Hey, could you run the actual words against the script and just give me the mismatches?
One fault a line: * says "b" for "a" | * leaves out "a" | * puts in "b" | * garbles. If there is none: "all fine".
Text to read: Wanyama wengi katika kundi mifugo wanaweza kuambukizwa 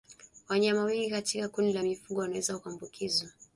* puts in "la"